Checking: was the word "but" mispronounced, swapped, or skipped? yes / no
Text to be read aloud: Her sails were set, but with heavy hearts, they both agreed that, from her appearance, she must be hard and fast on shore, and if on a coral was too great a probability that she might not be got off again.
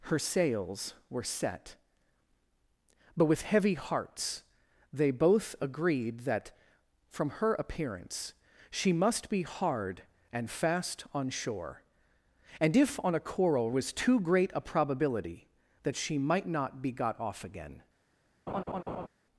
no